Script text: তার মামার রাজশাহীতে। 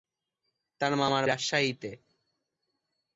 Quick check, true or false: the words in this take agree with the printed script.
true